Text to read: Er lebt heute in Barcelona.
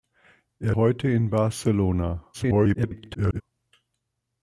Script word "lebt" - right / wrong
wrong